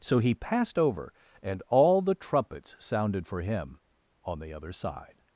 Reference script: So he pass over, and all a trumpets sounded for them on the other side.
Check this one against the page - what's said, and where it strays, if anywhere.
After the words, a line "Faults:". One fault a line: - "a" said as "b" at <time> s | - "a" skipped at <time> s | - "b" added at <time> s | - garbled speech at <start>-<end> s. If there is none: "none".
So he passed over, and all the trumpets sounded for him on the other side.
Faults:
- "pass" said as "passed" at 0.3 s
- "a" said as "the" at 2.0 s
- "them" said as "him" at 3.4 s